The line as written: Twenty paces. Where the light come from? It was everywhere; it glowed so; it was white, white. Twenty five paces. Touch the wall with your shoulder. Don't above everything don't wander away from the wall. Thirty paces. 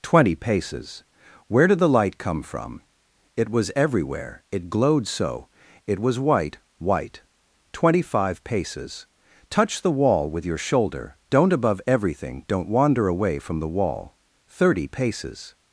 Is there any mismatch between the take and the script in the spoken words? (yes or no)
yes